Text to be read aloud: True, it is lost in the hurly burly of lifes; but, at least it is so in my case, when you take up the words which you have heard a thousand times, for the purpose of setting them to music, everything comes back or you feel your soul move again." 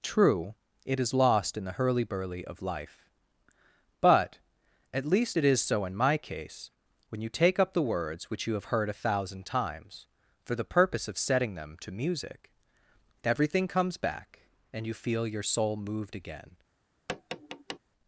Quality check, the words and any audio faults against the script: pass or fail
fail